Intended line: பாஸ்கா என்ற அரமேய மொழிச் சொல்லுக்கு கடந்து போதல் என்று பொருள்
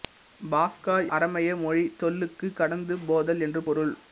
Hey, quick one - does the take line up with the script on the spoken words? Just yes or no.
no